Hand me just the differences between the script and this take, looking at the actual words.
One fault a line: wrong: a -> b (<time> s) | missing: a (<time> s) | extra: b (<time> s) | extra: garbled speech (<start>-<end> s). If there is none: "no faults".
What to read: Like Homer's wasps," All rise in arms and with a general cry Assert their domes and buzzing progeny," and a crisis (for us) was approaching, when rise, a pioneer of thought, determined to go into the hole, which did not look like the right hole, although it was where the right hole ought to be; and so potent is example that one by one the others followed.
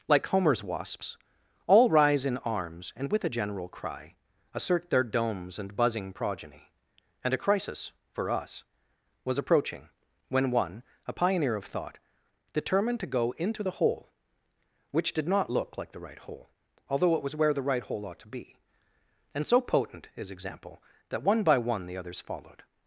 wrong: rise -> one (10.5 s)